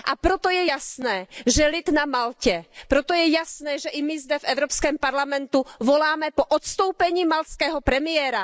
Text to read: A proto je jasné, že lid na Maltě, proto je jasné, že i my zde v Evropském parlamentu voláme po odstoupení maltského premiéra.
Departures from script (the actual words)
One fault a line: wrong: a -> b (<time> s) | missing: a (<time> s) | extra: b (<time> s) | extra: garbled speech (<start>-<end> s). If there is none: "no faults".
no faults